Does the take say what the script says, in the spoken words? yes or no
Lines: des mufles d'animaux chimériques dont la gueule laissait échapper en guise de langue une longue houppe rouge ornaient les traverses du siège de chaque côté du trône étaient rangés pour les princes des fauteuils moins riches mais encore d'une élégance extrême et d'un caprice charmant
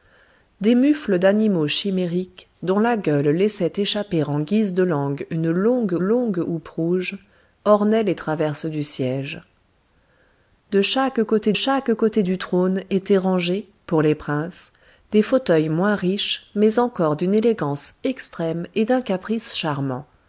no